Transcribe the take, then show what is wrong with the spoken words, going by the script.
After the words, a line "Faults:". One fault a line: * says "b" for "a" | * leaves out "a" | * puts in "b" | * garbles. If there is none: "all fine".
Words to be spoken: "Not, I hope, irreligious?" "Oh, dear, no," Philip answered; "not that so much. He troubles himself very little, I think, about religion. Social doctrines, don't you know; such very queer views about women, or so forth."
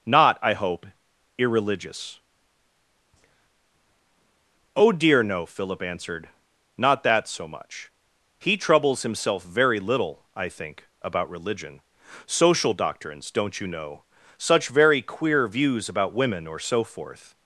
"Not, I hope, irreligious?" "Oh, dear, no," Philip answered; "not that so much. He troubles himself very little, I think, about religion. Social doctrines, don't you know; such very queer views about women, or so forth."
Faults:
all fine